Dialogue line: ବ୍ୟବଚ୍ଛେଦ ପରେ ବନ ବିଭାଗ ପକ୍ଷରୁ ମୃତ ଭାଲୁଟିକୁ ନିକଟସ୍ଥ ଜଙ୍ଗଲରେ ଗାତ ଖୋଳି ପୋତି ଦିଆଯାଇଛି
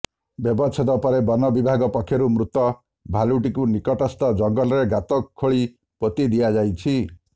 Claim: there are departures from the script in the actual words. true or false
false